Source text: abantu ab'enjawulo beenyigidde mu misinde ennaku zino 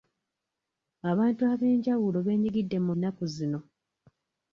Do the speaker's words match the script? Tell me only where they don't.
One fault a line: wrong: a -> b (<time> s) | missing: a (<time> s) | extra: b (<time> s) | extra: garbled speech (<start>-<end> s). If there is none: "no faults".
missing: misinde (2.9 s)